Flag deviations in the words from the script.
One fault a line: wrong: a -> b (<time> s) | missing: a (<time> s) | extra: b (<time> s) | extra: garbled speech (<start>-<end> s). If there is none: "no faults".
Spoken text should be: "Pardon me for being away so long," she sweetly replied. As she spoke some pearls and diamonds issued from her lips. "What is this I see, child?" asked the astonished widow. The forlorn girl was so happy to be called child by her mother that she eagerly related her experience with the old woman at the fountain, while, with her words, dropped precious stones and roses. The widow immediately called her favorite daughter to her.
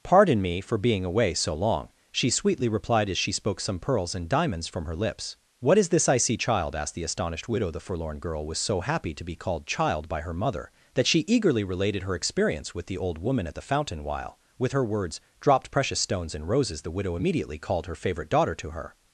missing: issued (4.7 s)